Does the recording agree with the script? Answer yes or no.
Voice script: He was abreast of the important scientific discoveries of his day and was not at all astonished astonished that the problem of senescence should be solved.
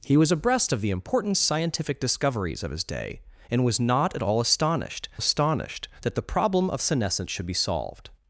yes